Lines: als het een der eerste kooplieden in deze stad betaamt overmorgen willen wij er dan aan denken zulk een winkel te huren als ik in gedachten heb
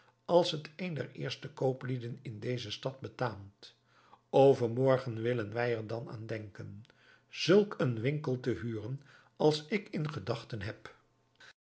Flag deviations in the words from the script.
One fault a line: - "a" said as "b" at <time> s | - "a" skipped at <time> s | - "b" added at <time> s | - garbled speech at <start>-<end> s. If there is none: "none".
none